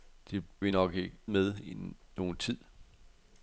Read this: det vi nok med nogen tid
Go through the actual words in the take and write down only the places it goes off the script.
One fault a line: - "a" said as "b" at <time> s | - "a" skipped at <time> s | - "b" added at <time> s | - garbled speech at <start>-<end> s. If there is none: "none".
none